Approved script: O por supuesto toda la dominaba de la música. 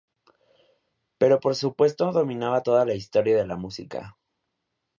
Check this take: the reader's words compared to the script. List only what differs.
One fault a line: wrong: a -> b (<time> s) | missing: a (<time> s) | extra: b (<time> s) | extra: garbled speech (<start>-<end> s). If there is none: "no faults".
wrong: O -> Pero (1.2 s)
extra: dominaba (2.1 s)
wrong: dominaba -> historia (2.9 s)